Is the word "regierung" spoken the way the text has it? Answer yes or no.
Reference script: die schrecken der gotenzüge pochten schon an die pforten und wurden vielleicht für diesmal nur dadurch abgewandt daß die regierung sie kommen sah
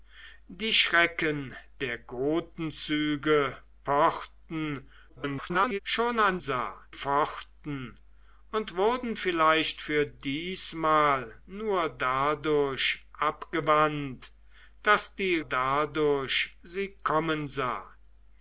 no